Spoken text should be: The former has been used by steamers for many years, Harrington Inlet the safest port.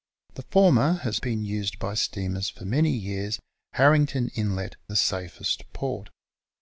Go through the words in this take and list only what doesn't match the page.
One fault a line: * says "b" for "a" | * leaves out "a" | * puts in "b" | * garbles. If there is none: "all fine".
all fine